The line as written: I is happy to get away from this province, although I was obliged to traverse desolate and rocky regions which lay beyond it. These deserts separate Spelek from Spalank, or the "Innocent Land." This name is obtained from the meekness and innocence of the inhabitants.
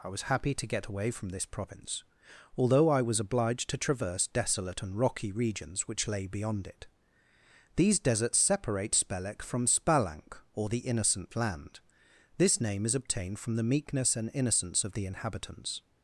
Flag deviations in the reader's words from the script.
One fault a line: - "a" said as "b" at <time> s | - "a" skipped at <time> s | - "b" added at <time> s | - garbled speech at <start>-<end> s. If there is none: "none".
- "is" said as "was" at 0.1 s